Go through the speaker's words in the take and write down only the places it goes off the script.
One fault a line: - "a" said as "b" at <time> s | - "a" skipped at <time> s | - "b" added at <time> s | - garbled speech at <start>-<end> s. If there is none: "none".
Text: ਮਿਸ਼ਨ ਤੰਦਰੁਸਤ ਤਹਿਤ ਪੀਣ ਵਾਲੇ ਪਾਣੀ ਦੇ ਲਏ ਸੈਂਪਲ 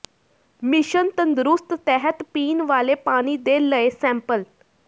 none